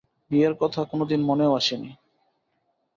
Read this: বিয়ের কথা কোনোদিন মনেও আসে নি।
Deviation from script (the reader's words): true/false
false